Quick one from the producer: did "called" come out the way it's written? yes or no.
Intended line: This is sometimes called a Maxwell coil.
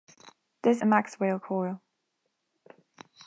no